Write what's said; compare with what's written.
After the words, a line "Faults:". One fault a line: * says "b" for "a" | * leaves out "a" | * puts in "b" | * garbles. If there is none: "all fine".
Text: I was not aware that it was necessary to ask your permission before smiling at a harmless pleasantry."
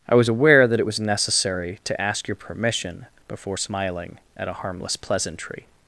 I was aware that it was necessary to ask your permission before smiling at a harmless pleasantry."
Faults:
* leaves out "not"